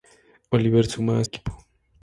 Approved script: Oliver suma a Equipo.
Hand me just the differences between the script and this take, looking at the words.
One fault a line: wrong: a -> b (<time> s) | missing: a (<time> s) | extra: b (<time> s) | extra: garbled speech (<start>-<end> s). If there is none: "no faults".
no faults